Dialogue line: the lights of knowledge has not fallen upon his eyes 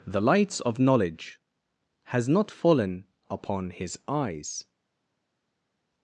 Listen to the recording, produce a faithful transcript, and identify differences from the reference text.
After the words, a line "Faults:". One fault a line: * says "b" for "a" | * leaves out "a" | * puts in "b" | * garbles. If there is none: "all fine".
the lights of knowledge has not fallen upon his eyes
Faults:
all fine